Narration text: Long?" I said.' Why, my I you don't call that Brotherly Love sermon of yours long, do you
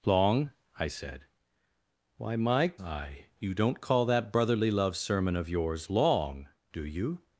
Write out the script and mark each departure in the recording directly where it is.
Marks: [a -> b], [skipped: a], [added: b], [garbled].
Long?" I said.' Why, my I you don't call that Brotherly Love sermon of yours long, do you